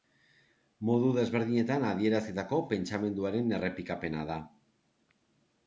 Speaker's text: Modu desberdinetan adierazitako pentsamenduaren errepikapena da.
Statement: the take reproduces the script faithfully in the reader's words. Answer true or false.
true